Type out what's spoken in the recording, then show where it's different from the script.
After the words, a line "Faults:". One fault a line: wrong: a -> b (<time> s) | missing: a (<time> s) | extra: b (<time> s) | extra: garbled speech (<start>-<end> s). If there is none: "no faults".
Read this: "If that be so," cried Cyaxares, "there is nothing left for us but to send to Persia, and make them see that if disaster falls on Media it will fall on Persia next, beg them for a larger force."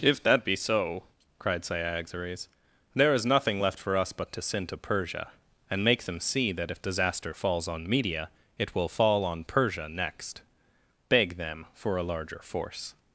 "If that be so," cried Cyaxares, "there is nothing left for us but to send to Persia, and make them see that if disaster falls on Media it will fall on Persia next, beg them for a larger force."
Faults:
no faults